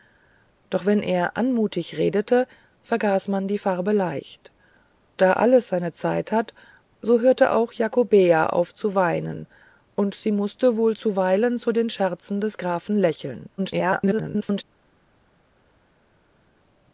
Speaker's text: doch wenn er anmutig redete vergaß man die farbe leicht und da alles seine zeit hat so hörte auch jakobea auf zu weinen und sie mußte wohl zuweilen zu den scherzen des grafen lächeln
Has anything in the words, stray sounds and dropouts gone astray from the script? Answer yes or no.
yes